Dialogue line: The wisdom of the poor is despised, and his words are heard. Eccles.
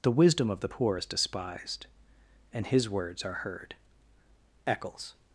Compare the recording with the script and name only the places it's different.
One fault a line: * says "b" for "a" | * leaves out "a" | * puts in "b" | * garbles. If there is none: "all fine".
all fine